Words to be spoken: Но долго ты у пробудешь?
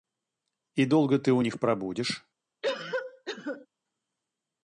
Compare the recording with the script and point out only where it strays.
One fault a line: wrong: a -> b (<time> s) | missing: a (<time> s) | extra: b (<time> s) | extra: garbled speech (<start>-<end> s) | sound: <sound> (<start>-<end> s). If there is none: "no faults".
wrong: Но -> И (0.7 s)
extra: них (1.4 s)
sound: cough (2.6-3.7 s)